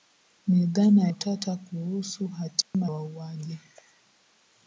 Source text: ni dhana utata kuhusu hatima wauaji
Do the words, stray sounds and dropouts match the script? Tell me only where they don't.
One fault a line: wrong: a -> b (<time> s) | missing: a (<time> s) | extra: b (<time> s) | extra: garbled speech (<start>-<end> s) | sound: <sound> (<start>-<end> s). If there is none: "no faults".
sound: dropout (2.6-2.7 s)